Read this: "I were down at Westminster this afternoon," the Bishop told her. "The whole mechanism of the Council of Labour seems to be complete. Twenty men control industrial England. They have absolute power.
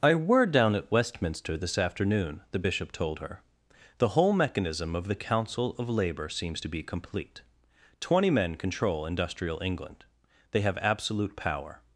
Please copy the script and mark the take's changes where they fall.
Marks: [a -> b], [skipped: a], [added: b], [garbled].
"I were down at Westminster this afternoon," the Bishop told her. "The whole mechanism of the Council of Labour seems to be complete. Twenty men control industrial England. They have absolute power.